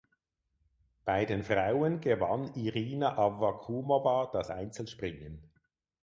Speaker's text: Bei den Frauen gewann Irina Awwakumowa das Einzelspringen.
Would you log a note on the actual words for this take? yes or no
no